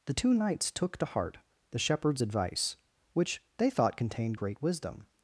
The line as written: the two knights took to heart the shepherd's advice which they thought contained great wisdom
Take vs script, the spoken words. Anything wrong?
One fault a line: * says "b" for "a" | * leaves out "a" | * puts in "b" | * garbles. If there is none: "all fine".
all fine